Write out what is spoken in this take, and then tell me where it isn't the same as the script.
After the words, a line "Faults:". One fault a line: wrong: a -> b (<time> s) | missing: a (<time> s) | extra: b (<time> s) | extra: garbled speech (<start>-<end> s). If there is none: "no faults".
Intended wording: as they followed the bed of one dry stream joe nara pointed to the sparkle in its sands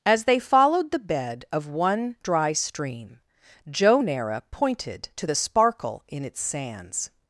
as they followed the bed of one dry stream joe nara pointed to the sparkle in its sands
Faults:
no faults